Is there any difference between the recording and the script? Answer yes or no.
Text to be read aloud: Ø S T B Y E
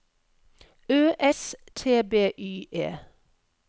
no